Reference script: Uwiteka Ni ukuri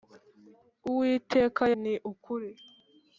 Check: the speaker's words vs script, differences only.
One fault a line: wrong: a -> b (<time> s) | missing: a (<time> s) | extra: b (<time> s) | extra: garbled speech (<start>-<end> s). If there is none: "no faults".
no faults